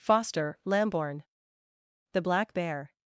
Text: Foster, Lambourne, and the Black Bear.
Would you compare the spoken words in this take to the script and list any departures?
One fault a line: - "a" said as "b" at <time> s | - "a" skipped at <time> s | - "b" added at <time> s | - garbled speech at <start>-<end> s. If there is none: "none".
- "and" skipped at 1.2 s